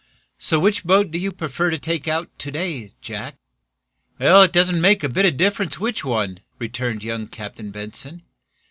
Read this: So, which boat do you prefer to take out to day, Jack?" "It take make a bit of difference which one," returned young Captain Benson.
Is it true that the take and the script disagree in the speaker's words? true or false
true